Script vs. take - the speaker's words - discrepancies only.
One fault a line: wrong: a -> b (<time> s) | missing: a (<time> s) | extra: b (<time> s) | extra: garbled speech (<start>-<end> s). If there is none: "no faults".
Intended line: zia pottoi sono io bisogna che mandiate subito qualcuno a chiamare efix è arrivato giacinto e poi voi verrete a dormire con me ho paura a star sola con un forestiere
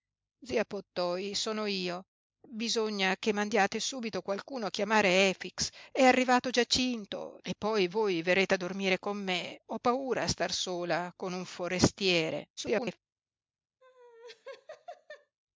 extra: garbled speech (12.6-13.0 s)